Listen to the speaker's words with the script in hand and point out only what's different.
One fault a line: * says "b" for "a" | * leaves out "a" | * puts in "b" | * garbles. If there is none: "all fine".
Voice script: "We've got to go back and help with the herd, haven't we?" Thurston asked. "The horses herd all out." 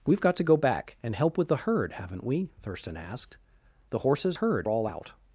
all fine